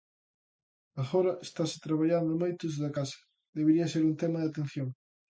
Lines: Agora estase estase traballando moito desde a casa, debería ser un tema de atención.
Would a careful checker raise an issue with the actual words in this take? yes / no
yes